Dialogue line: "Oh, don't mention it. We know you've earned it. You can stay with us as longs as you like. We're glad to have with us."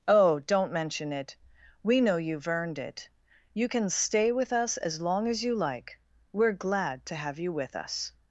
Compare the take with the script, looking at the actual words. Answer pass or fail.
fail